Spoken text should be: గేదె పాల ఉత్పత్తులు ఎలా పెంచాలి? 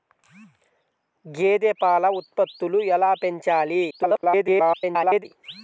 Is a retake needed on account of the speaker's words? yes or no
yes